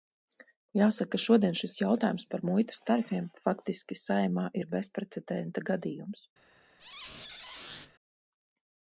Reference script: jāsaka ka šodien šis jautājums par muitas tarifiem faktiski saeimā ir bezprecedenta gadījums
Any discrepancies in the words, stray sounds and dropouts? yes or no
yes